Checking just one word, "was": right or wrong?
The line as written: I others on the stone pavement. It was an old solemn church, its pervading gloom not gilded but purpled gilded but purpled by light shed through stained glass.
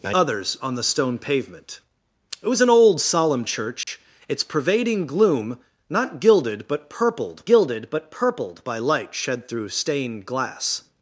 right